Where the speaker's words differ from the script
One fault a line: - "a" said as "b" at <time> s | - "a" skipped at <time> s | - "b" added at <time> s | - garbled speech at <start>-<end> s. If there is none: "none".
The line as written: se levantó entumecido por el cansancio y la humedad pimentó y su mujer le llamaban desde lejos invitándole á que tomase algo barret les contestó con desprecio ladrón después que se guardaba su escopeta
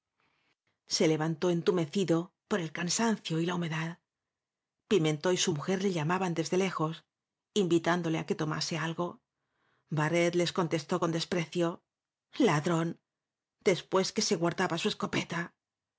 none